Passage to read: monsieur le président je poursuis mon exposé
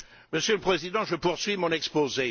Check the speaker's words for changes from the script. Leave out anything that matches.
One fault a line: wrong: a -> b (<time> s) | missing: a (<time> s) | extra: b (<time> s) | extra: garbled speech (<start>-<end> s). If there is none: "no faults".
no faults